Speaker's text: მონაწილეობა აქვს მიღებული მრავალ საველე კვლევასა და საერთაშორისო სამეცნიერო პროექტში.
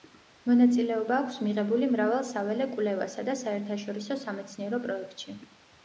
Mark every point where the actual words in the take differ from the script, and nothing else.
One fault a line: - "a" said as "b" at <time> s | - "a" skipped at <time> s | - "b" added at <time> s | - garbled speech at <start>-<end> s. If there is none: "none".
none